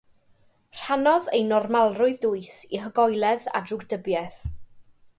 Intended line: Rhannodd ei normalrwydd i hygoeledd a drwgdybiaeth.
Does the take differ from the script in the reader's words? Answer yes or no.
yes